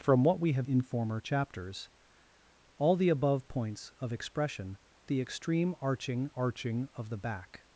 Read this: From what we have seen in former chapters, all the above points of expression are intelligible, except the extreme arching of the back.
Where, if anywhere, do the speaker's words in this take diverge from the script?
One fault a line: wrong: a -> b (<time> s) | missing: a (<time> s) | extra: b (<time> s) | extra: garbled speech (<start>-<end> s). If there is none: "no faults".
missing: seen (0.7 s)
missing: are intelligible except (4.8 s)
extra: arching (6.3 s)